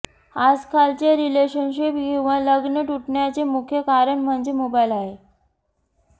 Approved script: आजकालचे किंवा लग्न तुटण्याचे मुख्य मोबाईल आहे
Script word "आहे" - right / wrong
right